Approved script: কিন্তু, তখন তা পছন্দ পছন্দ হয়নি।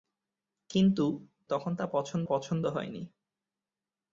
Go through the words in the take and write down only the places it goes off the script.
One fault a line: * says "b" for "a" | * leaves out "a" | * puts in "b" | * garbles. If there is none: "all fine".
all fine